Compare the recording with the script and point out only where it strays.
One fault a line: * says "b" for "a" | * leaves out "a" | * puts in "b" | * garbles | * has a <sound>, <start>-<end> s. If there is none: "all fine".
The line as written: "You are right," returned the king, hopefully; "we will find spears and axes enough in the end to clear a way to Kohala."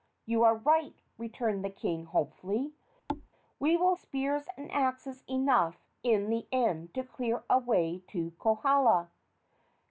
* has a thud, 3.1-3.3 s
* leaves out "find"